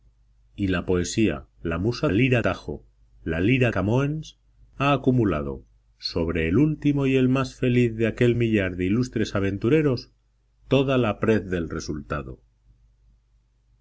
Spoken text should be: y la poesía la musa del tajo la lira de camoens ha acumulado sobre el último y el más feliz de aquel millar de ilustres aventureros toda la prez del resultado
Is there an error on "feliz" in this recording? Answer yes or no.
no